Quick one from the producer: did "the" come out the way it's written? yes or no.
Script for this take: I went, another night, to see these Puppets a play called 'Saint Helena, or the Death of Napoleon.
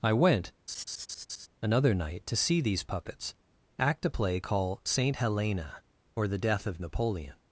yes